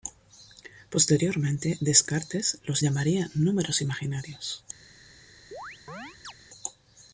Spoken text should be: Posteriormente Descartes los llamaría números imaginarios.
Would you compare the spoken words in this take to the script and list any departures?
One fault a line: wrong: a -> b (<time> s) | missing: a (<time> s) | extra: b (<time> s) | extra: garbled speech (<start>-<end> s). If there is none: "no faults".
no faults